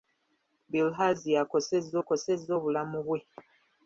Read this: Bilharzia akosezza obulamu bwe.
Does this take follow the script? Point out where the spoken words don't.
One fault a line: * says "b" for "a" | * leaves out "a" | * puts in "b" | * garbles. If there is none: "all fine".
* puts in "akosezza"